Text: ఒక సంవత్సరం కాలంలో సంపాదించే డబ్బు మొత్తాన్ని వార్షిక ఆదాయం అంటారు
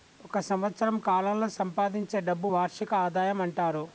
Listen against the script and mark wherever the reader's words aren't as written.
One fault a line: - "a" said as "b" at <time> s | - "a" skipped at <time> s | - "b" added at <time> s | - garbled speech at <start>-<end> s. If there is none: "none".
- "మొత్తాన్ని" skipped at 2.5 s